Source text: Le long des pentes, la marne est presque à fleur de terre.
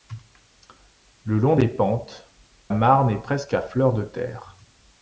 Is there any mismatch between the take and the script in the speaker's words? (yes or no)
yes